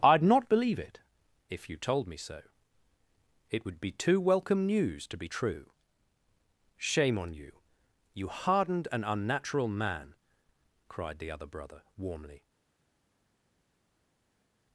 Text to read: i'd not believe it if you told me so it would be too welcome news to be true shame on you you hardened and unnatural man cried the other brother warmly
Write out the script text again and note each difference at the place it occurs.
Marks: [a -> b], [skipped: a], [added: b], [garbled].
i'd not believe it if you told me so it would be too welcome news to be true shame on you you hardened and unnatural man cried the other brother warmly